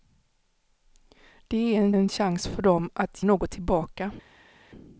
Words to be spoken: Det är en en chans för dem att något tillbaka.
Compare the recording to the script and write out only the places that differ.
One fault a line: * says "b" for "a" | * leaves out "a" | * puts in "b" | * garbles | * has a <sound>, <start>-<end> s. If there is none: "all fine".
all fine